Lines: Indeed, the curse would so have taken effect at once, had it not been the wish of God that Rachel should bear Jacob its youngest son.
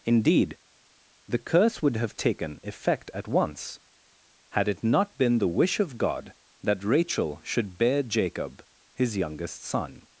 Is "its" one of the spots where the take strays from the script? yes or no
yes